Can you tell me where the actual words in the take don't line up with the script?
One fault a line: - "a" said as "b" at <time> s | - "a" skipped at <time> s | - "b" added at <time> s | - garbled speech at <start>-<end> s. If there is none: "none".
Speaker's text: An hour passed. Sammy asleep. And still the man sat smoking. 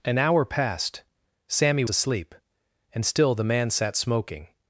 none